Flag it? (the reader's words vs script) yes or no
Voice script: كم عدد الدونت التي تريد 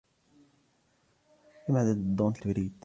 yes